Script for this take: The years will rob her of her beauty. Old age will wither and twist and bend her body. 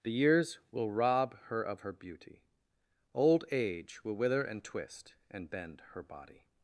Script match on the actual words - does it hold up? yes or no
yes